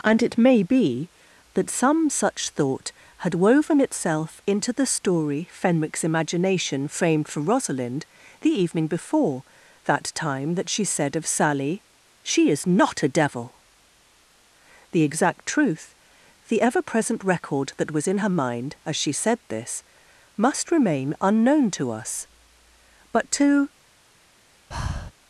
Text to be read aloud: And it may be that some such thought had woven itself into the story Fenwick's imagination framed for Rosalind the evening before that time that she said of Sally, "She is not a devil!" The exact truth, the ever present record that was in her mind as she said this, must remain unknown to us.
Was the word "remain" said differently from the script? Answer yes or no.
no